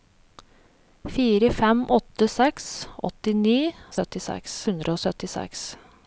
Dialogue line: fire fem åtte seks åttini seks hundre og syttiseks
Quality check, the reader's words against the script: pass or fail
fail